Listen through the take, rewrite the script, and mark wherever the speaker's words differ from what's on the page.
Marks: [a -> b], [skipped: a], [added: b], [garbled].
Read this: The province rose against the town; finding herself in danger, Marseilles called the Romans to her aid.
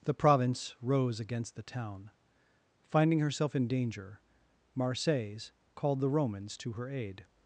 The province rose against the town; finding herself in danger, Marseilles called the Romans to her aid.